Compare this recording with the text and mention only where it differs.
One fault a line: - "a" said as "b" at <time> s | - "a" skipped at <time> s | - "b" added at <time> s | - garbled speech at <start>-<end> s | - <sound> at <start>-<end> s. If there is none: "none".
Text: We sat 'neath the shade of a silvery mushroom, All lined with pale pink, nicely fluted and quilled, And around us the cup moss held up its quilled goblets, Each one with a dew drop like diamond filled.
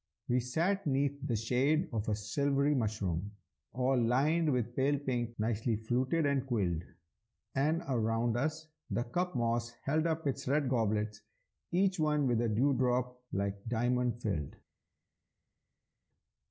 - "quilled" said as "red" at 10.5 s